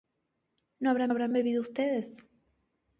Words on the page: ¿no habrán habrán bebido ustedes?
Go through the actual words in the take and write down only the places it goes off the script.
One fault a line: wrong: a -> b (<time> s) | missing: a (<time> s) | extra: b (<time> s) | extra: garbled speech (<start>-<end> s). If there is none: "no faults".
no faults